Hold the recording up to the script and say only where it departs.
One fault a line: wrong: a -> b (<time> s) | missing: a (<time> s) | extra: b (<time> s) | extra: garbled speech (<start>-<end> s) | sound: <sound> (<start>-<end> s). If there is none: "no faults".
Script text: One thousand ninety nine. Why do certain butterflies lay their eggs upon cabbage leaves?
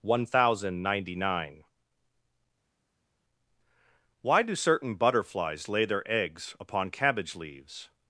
no faults